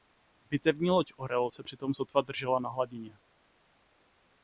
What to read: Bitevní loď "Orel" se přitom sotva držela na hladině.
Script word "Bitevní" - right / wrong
right